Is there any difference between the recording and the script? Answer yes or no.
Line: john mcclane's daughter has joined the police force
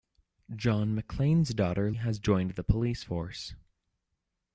no